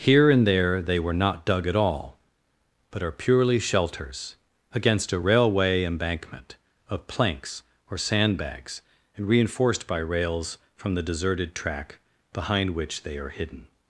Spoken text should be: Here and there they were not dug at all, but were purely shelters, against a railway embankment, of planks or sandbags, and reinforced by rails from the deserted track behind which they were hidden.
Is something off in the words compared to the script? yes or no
yes